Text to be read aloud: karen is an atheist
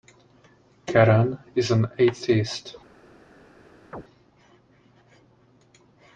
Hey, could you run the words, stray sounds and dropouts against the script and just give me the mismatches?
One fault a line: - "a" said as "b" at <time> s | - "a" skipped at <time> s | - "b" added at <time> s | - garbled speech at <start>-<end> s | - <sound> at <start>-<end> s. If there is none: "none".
- chirp at 3.9-4.0 s